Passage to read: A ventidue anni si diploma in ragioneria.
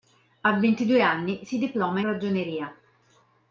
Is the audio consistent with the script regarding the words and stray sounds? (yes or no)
no